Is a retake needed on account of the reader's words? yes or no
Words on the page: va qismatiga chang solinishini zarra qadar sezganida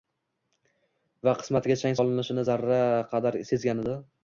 no